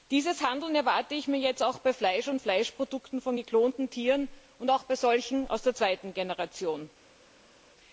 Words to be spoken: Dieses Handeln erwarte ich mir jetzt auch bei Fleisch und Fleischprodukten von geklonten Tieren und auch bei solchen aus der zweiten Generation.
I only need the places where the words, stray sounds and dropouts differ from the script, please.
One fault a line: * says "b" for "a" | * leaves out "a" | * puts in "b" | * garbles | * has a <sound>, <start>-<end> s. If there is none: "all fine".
all fine